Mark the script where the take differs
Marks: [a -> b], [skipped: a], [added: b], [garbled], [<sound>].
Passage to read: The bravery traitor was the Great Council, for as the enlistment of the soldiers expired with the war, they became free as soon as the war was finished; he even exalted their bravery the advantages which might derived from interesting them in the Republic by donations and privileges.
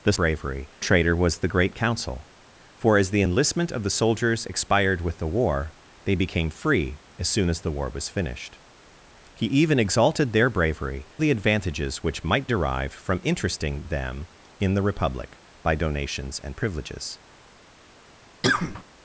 The bravery traitor was the Great Council, for as the enlistment of the soldiers expired with the war, they became free as soon as the war was finished; he even exalted their bravery the advantages which might derived from interesting them in the Republic by donations and privileges. [cough]